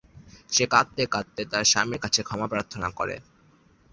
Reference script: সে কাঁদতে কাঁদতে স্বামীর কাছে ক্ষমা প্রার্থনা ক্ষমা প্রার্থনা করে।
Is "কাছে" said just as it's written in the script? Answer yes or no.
yes